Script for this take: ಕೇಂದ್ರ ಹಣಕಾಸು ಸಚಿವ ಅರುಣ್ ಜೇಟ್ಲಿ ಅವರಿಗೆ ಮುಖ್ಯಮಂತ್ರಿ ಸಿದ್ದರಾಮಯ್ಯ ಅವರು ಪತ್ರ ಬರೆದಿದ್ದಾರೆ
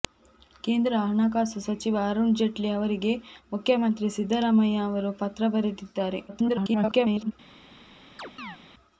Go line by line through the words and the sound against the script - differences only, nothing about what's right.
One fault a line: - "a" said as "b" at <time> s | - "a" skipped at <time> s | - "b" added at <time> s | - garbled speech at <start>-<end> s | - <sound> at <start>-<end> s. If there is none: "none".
- garbled speech at 6.3-7.3 s
- chirp at 8.2-8.6 s